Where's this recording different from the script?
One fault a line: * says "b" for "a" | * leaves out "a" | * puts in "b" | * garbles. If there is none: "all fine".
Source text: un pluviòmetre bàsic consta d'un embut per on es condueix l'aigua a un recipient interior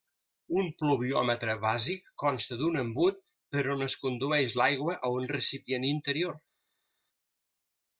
all fine